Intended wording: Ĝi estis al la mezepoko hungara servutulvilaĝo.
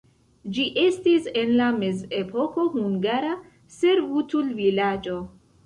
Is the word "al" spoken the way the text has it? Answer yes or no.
no